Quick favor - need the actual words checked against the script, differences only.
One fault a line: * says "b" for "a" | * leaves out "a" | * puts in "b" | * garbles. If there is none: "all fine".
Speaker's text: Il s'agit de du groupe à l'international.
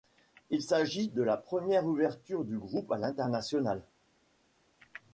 * puts in "la première ouverture"